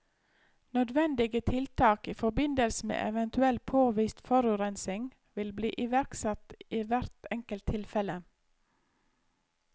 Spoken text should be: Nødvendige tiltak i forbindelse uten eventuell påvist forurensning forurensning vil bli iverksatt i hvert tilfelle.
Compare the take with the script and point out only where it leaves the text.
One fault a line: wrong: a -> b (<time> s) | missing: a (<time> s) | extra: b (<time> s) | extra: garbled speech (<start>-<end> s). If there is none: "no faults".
wrong: uten -> med (2.9 s)
missing: forurensning (5.1 s)
extra: enkelt (7.3 s)